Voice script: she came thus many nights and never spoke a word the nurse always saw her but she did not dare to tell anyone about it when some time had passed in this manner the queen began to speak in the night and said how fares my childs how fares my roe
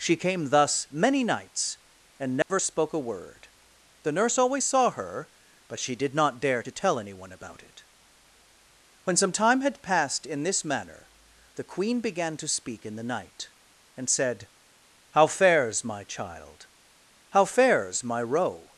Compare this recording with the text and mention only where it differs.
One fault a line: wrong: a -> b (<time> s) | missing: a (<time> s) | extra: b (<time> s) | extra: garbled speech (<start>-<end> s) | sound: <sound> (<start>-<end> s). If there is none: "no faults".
sound: dropout (2.4-2.5 s)
wrong: childs -> child (16.0 s)